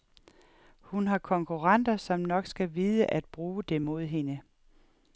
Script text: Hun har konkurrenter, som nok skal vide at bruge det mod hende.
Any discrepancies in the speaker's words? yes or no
no